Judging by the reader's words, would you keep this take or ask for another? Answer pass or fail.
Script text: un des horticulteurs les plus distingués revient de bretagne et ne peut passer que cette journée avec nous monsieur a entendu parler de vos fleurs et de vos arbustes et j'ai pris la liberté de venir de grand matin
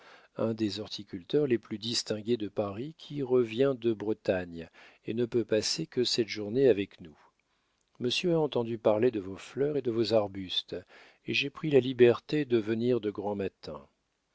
fail